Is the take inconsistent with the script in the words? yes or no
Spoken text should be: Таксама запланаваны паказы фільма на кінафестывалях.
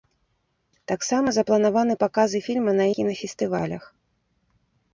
no